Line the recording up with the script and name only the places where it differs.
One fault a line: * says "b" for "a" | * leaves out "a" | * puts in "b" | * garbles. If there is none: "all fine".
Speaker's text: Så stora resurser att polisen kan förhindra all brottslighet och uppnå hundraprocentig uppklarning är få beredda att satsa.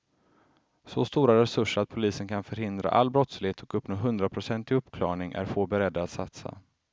all fine